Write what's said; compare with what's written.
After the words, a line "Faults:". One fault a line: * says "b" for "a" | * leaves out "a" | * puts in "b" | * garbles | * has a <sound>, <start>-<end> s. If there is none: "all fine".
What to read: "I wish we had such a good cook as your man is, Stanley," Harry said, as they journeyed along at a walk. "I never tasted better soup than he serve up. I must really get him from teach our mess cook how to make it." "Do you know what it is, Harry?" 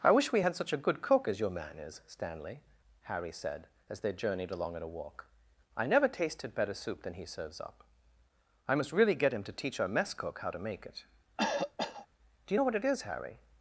"I wish we had such a good cook as your man is, Stanley," Harry said, as they journeyed along at a walk. "I never tasted better soup than he serves up. I must really get him to teach our mess cook how to make it." "Do you know what it is, Harry?"
Faults:
* says "serves" for "serve"
* says "to" for "from"
* has a cough, 11.4-12.1 s